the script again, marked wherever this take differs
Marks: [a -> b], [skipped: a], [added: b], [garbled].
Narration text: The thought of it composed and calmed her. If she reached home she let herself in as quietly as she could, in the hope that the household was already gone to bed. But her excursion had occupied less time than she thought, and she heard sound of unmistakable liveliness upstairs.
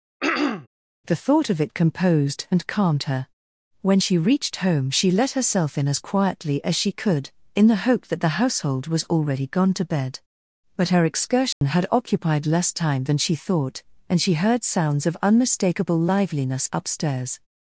The thought of it composed and calmed her. [If -> When] she reached home she let herself in as quietly as she could, in the hope that the household was already gone to bed. But her excursion had occupied less time than she thought, and she heard [sound -> sounds] of unmistakable liveliness upstairs.